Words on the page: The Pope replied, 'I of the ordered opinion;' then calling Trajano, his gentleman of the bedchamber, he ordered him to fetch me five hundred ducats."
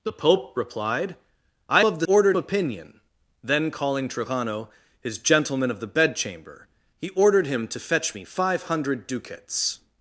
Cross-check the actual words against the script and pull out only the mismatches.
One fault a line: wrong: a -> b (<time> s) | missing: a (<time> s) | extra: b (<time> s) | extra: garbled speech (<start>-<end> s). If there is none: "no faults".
no faults